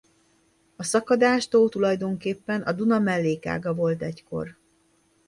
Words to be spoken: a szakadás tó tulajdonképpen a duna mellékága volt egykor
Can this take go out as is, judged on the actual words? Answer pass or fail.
pass